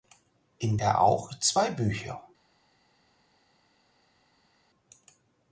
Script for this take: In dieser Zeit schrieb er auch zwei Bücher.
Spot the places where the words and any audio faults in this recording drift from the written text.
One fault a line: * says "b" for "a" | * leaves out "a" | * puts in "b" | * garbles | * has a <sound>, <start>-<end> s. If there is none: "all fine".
* leaves out "dieser Zeit schrieb"